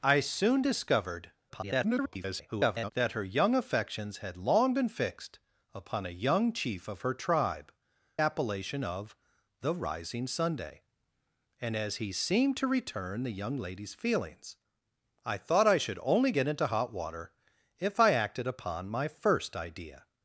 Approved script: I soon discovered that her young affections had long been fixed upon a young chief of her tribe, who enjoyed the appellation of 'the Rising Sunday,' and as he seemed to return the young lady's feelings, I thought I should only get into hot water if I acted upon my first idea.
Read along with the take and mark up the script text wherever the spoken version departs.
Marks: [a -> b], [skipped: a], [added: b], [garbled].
I soon discovered [garbled] that her young affections had long been fixed upon a young chief of her tribe, [skipped: who enjoyed the] appellation of 'the Rising Sunday,' and as he seemed to return the young lady's feelings, I thought I should only get into hot water if I acted upon my first idea.